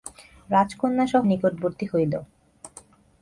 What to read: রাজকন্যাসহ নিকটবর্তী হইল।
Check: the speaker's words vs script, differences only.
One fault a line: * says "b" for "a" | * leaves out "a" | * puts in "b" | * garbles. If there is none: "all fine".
all fine